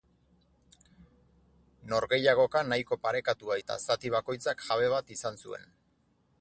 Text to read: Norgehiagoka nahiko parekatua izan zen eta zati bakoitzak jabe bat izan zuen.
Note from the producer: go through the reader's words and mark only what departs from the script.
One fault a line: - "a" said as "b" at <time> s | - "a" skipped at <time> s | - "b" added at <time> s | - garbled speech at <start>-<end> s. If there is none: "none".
- "izan zen" skipped at 3.6 s